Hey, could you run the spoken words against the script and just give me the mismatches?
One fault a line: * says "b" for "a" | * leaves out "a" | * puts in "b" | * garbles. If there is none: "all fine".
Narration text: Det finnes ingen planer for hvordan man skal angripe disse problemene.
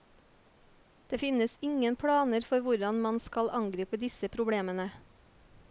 all fine